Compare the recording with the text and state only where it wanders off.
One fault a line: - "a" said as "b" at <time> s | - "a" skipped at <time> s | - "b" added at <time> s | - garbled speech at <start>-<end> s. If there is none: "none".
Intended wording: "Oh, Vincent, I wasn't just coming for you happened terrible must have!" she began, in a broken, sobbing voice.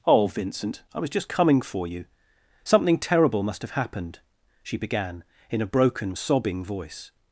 - "wasn't" said as "was" at 1.0 s
- "happened" said as "something" at 2.6 s
- "happened" added at 3.7 s